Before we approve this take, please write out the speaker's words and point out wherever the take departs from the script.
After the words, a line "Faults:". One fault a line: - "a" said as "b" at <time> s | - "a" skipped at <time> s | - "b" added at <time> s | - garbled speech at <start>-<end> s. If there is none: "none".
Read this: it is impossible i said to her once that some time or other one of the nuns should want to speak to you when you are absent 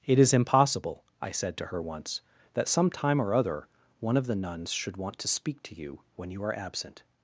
it is impossible i said to her once that some time or other one of the nuns should want to speak to you when you are absent
Faults:
none